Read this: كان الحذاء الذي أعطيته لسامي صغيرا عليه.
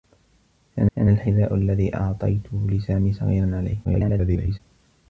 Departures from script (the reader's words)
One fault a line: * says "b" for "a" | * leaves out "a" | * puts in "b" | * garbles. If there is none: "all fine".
* puts in "كان"
* garbles